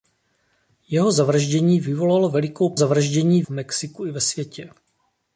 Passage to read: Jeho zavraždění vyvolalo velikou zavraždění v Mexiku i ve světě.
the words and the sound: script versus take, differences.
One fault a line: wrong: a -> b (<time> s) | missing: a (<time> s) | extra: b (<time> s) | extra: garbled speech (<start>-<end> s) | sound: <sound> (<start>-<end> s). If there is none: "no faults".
no faults